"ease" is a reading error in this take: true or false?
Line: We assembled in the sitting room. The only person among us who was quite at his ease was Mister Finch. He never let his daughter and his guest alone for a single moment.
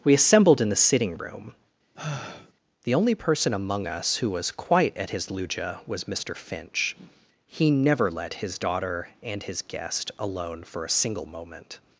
true